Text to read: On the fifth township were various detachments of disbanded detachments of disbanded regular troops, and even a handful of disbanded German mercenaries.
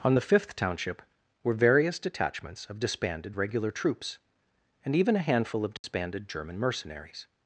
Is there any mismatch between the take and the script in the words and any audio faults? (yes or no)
yes